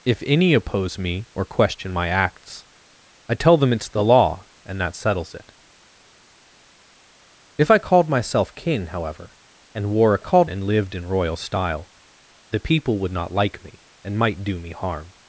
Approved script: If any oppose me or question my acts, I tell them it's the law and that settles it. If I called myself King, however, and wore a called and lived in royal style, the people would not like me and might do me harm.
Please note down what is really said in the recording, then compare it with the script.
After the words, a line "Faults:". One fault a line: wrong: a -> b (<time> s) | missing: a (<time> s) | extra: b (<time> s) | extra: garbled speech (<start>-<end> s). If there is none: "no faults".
If any oppose me or question my acts, I tell them it's the law and that settles it. If I called myself King, however, and wore a called and lived in royal style, the people would not like me and might do me harm.
Faults:
no faults